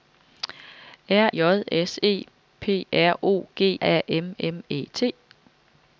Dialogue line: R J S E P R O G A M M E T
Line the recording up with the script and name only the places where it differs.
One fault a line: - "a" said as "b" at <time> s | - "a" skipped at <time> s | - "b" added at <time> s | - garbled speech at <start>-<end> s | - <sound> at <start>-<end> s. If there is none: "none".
none